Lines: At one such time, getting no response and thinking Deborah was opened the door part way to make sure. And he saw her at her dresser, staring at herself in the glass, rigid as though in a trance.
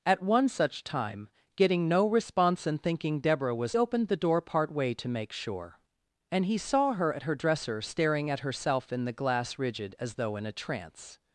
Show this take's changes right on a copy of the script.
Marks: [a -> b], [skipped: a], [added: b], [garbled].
At one such time, getting no response and thinking Deborah was opened the door part way to make sure. And he saw her at her dresser, staring at herself in the glass, rigid as though in a trance.